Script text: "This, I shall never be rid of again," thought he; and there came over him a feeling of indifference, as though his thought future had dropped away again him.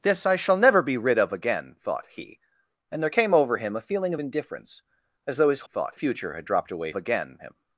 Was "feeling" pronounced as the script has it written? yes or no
yes